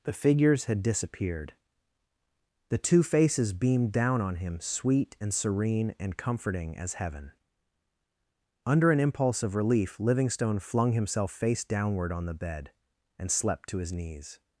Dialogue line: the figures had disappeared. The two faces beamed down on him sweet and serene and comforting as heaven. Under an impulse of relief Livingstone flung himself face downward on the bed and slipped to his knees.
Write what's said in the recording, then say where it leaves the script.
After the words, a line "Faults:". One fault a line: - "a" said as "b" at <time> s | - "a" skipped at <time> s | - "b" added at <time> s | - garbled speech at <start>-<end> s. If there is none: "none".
the figures had disappeared. The two faces beamed down on him sweet and serene and comforting as heaven. Under an impulse of relief Livingstone flung himself face downward on the bed and slept to his knees.
Faults:
- "slipped" said as "slept" at 13.3 s